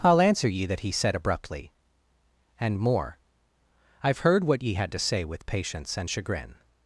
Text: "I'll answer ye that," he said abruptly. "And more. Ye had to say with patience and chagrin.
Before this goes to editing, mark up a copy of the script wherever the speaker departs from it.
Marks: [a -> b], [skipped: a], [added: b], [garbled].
"I'll answer ye that," he said abruptly. "And more. [added: I've heard what] Ye had to say with patience and chagrin.